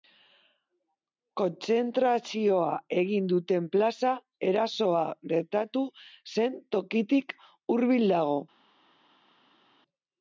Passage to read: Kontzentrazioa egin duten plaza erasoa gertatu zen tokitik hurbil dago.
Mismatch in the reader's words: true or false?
false